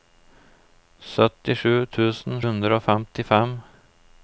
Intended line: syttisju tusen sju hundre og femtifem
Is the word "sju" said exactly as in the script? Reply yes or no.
no